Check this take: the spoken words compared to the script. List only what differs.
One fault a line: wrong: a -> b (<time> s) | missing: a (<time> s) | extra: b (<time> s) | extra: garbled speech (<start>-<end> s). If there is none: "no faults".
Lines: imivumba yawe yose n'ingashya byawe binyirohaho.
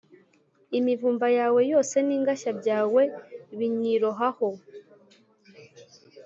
no faults